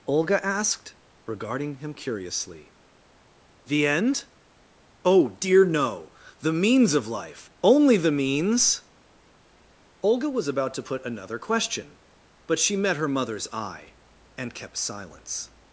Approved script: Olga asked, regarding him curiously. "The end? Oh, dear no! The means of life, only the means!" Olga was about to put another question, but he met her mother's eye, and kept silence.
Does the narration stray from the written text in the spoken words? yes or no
yes